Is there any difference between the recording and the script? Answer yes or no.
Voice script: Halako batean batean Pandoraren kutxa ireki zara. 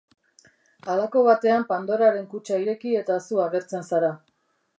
yes